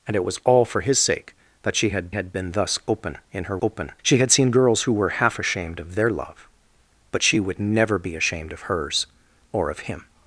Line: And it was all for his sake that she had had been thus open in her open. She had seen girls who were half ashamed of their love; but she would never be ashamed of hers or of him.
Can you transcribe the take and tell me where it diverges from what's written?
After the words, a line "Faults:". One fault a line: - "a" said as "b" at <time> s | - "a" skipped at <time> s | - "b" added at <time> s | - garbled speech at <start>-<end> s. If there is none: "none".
And it was all for his sake that she had had been thus open in her open. She had seen girls who were half ashamed of their love; but she would never be ashamed of hers or of him.
Faults:
none